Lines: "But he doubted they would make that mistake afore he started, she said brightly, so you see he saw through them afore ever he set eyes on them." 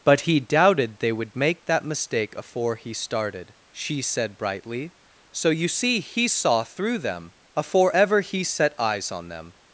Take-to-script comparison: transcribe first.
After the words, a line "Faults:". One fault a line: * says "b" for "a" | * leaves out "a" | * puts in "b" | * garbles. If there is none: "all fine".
"But he doubted they would make that mistake afore he started, she said brightly, so you see he saw through them afore ever he set eyes on them."
Faults:
all fine